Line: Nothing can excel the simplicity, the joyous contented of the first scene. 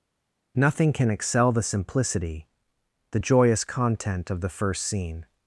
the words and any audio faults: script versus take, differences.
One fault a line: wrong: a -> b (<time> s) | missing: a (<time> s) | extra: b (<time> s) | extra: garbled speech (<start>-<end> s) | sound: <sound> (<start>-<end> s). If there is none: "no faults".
wrong: contented -> content (3.6 s)